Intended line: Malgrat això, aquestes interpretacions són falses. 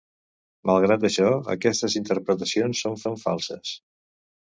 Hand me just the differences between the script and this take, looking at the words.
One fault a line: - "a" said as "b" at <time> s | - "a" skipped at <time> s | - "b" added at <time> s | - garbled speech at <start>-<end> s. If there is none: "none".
- "són" added at 3.1 s